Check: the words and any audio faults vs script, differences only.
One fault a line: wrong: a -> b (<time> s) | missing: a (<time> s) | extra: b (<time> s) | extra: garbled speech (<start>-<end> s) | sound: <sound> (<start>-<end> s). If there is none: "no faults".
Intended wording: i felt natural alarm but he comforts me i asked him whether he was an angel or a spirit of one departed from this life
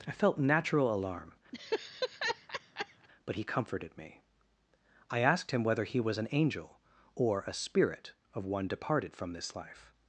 sound: laugh (1.5-3.1 s)
wrong: comforts -> comforted (3.4 s)